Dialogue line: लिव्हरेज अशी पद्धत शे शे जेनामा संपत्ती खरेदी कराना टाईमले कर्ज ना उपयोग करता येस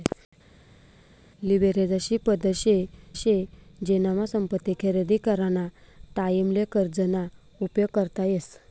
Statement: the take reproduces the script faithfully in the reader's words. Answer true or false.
true